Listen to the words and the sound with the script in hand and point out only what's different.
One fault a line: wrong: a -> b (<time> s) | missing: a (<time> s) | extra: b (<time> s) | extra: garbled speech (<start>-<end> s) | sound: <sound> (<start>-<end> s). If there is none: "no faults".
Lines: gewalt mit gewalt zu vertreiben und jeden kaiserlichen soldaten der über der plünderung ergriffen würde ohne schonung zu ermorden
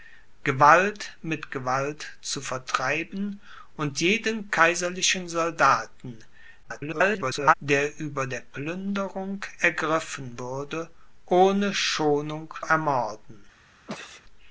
extra: garbled speech (6.6-7.5 s)
missing: zu (12.5 s)
sound: sneeze (13.9-14.2 s)